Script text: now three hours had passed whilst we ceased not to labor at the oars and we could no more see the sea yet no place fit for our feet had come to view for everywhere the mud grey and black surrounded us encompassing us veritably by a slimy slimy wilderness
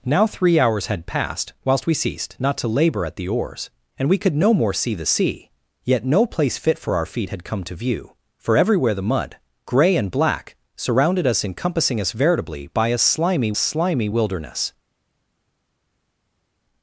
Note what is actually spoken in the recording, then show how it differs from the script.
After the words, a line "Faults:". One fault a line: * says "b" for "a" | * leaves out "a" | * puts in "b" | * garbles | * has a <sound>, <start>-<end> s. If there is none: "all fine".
now three hours had passed whilst we ceased not to labor at the oars and we could no more see the sea yet no place fit for our feet had come to view for everywhere the mud grey and black surrounded us encompassing us veritably by a slimy slimy wilderness
Faults:
all fine